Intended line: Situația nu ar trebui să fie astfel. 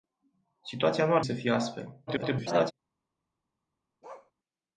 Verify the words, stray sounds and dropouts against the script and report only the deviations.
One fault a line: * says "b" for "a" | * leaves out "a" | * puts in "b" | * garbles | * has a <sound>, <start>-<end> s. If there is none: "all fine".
* leaves out "trebui"
* garbles
* has a bark, 4.0-4.3 s